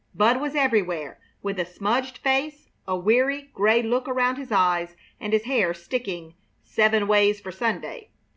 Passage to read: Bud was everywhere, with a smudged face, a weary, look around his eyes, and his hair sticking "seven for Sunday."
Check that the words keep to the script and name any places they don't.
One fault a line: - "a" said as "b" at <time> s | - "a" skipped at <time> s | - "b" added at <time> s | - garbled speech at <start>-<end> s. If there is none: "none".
- "gray" added at 3.5 s
- "ways" added at 7.1 s